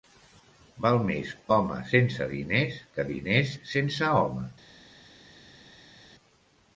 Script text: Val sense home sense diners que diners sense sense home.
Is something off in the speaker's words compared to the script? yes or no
yes